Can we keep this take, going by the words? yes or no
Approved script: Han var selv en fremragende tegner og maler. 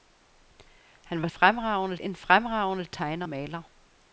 no